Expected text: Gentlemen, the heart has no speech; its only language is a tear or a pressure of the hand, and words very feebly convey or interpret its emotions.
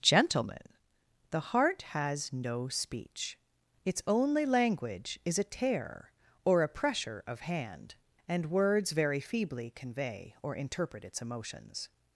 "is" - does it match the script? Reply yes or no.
yes